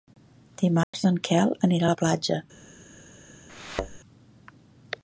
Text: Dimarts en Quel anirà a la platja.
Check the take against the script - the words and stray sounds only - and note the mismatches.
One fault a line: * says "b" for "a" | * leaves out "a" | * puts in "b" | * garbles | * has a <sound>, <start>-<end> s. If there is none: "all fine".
* has a dropout, 0.8-0.9 s
* has a thud, 3.5-4.0 s